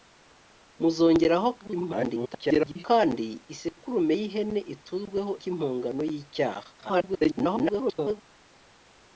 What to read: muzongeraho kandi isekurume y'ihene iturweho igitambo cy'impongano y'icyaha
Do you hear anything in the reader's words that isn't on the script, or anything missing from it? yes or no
yes